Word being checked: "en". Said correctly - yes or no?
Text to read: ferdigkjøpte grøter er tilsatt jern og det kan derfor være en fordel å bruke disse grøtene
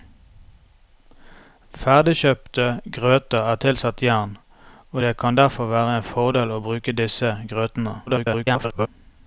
yes